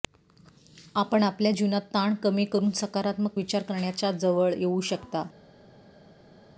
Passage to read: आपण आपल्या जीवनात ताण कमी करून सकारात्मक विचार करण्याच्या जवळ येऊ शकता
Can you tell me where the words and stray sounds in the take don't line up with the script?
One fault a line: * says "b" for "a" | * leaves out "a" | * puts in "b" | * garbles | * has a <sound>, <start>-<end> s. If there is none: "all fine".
all fine